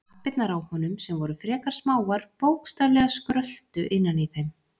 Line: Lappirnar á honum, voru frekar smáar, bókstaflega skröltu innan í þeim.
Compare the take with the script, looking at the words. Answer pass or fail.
fail